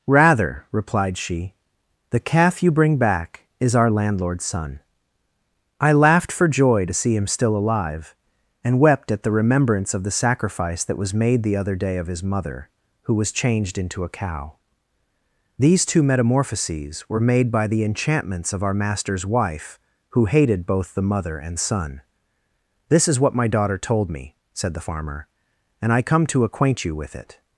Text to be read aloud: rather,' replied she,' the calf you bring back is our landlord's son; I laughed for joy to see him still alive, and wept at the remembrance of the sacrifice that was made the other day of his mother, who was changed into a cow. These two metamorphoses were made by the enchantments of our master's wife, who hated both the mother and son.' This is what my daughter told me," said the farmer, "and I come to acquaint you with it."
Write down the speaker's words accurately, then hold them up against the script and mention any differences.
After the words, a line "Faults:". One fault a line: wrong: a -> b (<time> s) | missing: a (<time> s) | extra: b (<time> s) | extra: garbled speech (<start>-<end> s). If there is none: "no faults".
rather,' replied she,' the calf you bring back is our landlord's son; I laughed for joy to see him still alive, and wept at the remembrance of the sacrifice that was made the other day of his mother, who was changed into a cow. These two metamorphoses were made by the enchantments of our master's wife, who hated both the mother and son.' This is what my daughter told me," said the farmer, "and I come to acquaint you with it."
Faults:
no faults